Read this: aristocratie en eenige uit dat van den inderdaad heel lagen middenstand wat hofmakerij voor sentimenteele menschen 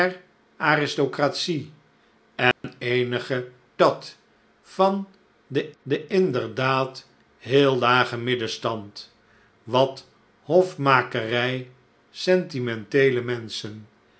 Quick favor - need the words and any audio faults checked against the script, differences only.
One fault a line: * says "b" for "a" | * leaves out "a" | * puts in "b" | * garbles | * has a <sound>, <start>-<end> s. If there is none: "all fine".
* has a dropout, 2.5-2.6 s
* leaves out "uit"
* puts in "den"
* leaves out "voor"